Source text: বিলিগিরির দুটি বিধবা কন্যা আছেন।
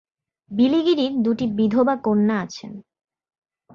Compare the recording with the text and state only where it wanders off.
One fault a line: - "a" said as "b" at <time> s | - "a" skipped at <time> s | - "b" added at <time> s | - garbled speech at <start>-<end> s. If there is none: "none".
none